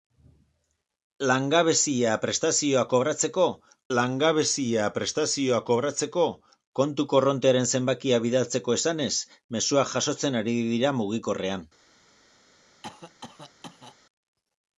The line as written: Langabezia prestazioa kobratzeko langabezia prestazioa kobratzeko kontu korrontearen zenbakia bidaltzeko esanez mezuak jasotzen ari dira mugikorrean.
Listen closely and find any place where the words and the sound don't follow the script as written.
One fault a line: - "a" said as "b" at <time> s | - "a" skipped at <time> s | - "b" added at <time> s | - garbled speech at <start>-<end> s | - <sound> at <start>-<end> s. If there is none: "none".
- cough at 12.8-14.0 s